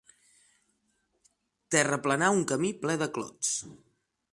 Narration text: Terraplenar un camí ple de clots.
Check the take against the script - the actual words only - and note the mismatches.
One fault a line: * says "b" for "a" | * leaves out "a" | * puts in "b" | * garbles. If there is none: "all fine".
all fine